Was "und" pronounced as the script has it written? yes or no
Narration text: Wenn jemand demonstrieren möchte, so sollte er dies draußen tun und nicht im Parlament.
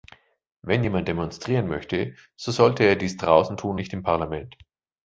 no